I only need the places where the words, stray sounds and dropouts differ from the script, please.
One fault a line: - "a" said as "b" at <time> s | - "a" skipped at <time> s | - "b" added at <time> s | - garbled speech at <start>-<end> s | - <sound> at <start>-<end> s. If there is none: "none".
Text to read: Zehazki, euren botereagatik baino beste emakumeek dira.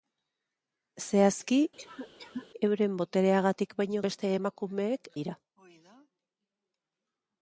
- cough at 1.8-2.5 s